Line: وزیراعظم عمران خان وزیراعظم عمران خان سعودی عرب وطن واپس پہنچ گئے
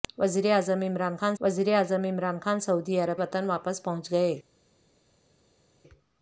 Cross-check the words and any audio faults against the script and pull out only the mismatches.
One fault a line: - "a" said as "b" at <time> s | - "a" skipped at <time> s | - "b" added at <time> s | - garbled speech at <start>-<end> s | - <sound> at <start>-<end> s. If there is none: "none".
none